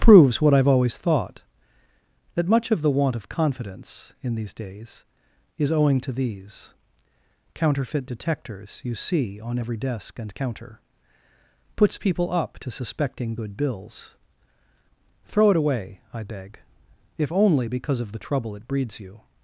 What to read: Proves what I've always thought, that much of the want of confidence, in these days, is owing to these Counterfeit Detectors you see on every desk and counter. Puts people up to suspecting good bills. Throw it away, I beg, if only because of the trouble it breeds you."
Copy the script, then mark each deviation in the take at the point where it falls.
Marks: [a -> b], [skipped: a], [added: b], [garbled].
Proves what I've always thought, that much of the want of confidence, in these days, is owing to these Counterfeit Detectors you see on every desk and counter. Puts people up to suspecting good bills. Throw it away, I beg, if only because of the trouble it breeds you."